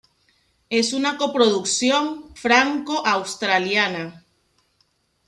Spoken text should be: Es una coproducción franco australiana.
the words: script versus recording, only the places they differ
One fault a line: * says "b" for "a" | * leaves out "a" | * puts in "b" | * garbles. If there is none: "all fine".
all fine